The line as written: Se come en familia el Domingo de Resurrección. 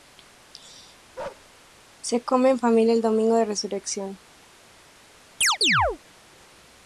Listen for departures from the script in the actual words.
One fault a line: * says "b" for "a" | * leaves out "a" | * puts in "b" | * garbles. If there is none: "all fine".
all fine